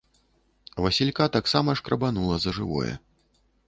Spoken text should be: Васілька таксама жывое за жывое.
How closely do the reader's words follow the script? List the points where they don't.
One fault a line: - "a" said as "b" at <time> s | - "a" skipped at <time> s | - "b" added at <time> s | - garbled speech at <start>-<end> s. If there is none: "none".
- "жывое" said as "шкрабанула" at 1.8 s